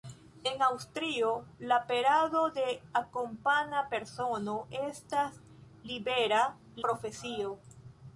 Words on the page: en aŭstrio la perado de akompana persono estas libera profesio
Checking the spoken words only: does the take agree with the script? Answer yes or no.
yes